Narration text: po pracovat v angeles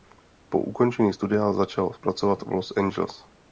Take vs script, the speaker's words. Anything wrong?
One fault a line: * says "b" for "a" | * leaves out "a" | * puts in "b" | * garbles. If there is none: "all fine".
* puts in "ukončení studia začal"
* puts in "los"